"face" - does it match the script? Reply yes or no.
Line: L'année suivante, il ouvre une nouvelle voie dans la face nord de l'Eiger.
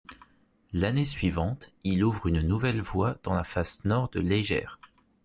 yes